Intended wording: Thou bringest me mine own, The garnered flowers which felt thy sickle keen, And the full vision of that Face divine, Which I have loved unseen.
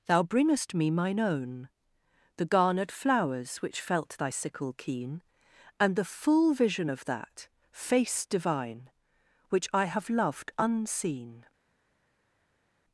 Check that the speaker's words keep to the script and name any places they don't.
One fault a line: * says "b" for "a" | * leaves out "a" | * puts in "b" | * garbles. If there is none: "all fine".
all fine